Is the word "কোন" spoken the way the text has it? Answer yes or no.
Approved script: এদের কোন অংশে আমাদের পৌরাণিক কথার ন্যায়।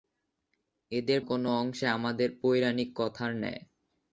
yes